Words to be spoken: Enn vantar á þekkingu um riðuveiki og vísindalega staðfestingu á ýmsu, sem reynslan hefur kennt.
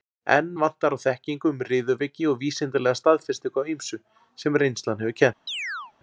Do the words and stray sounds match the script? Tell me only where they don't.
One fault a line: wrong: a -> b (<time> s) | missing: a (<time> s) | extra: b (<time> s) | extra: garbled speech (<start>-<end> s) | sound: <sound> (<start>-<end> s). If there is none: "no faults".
sound: chirp (5.5-5.9 s)